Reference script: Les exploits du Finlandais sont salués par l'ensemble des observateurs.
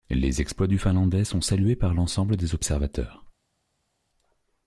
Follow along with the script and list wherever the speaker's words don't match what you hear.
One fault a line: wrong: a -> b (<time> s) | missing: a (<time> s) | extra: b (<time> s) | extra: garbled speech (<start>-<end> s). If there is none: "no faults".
no faults